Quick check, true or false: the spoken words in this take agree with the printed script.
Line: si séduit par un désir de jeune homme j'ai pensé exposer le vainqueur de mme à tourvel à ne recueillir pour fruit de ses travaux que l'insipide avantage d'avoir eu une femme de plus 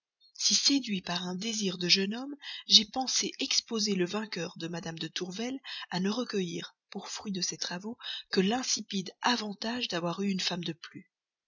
false